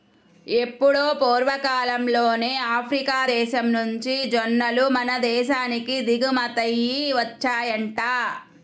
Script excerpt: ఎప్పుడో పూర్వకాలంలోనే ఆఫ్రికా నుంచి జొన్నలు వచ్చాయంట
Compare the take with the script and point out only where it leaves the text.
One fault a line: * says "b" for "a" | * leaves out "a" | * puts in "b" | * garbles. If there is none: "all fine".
* puts in "దేశం"
* puts in "మన దేశానికి దిగుమతయ్యి"